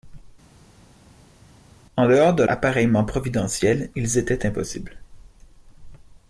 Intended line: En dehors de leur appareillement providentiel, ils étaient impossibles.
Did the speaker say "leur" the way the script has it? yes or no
no